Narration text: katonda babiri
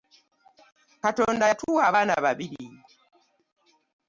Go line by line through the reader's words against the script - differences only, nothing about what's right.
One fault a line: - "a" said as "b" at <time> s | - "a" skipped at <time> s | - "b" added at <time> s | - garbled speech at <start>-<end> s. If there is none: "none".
- "yatuwa abaana" added at 1.5 s